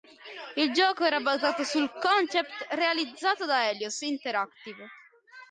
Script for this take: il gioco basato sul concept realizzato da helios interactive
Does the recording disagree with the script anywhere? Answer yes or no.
yes